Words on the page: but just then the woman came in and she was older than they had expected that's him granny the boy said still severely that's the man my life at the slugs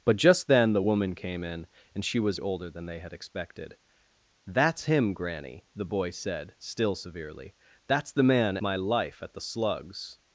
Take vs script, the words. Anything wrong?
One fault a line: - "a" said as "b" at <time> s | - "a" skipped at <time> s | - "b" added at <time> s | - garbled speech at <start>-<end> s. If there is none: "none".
none